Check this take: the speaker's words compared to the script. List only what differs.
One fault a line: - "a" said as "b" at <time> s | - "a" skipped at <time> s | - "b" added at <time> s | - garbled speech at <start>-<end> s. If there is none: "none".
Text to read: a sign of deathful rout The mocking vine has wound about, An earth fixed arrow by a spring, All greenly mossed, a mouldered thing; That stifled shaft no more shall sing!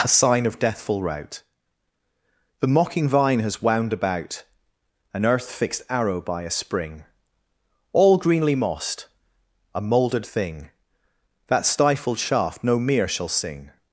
- "more" said as "mere" at 12.8 s